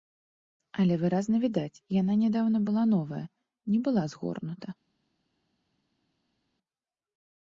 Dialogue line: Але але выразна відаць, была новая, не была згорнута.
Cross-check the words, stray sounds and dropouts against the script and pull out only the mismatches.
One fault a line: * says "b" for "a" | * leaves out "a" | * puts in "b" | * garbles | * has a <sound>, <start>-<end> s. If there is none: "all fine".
* leaves out "але"
* puts in "яна нядаўна"